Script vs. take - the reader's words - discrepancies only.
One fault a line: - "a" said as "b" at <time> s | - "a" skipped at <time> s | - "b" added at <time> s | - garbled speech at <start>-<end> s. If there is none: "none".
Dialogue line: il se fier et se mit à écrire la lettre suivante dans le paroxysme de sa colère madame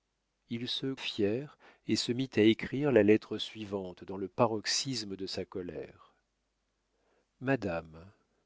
none